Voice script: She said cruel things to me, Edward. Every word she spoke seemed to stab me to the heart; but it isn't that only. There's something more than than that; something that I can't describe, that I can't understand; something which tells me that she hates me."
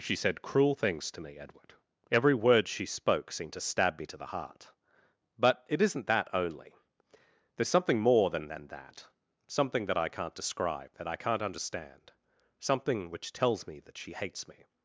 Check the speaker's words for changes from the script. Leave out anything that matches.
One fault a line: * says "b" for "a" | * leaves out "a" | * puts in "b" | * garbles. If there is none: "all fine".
all fine